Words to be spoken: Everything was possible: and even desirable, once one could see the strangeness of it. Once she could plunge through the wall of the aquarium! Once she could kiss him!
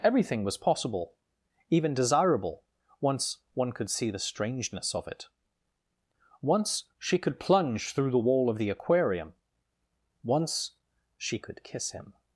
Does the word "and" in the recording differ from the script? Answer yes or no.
yes